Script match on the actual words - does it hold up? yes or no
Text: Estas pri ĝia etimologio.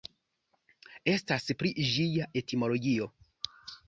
yes